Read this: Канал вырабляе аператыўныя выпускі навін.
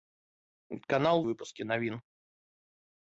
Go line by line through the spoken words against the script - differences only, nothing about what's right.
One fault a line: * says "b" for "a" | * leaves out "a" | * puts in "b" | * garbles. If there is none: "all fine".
* leaves out "вырабляе аператыўныя"